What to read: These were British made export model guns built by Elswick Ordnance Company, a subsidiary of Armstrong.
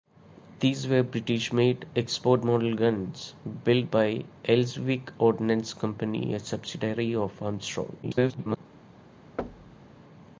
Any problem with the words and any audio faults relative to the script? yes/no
yes